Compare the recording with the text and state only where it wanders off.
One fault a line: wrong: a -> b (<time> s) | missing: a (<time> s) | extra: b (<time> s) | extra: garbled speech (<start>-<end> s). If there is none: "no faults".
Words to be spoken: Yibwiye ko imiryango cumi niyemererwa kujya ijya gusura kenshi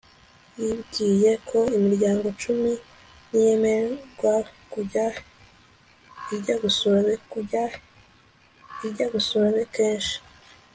extra: kujya ijya gusura (7.3 s)